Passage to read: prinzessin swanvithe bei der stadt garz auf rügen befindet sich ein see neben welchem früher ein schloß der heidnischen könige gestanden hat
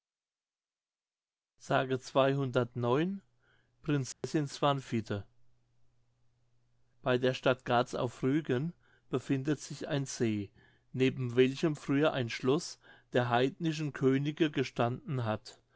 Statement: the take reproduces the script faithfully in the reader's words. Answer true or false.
true